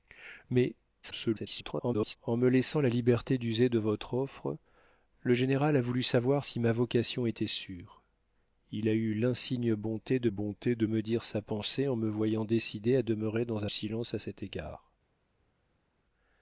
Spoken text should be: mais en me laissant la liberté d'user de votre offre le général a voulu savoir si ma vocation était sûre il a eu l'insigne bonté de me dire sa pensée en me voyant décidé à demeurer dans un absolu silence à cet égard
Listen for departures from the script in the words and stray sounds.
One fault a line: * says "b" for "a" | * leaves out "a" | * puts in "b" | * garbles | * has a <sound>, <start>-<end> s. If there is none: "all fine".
* garbles
* puts in "bonté de"
* leaves out "un absolu"